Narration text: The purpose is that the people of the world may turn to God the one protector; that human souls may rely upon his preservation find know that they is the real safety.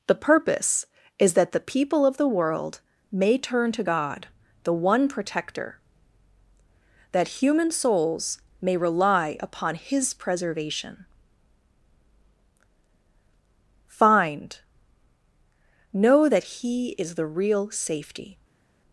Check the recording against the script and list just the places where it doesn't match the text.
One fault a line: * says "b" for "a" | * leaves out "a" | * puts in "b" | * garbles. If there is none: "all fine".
* says "he" for "they"